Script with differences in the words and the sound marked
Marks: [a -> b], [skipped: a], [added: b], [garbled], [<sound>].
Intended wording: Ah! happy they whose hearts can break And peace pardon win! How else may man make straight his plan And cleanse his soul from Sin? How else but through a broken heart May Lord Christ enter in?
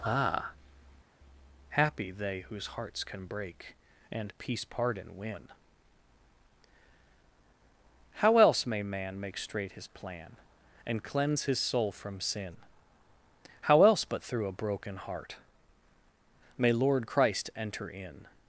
Ah! happy they whose hearts can break And peace pardon win! How else may man make straight his plan And cleanse his soul from Sin? How else but through a broken heart May Lord Christ enter in?